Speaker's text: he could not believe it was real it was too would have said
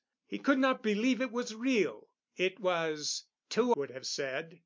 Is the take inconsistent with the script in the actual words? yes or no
no